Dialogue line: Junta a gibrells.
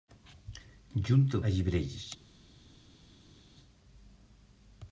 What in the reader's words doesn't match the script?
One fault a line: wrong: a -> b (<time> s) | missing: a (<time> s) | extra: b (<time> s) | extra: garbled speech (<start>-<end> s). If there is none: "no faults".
no faults